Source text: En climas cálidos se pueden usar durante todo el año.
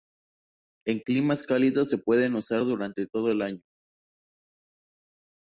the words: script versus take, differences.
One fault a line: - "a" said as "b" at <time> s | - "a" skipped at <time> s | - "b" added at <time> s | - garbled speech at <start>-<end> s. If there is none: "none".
none